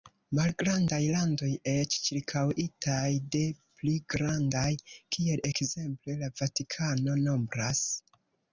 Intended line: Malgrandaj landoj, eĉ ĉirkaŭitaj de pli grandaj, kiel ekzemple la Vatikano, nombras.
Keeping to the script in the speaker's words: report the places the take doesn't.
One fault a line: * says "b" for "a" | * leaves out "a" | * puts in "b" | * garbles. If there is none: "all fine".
all fine